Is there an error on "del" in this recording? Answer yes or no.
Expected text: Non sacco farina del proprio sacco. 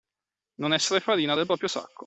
no